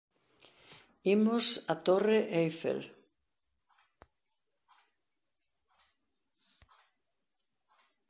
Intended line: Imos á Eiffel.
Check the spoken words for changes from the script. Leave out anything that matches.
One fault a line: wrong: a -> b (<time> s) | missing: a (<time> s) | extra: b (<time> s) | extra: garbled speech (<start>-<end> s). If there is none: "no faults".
extra: Torre (1.9 s)